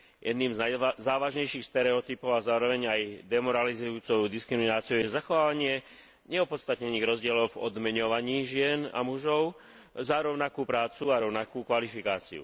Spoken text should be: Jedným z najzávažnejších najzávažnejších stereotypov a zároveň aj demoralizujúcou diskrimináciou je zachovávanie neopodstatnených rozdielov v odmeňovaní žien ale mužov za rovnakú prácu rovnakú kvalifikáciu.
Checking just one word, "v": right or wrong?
right